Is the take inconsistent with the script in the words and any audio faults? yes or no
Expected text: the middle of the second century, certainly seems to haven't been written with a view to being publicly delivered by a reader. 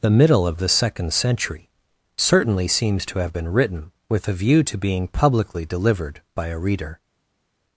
yes